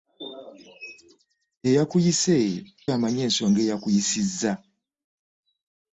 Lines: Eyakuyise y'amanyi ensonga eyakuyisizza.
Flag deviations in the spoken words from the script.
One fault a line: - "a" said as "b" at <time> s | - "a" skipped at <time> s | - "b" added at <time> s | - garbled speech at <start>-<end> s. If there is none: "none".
none